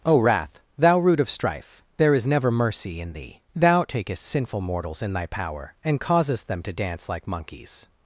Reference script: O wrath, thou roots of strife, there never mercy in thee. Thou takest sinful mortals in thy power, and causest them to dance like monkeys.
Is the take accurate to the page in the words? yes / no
no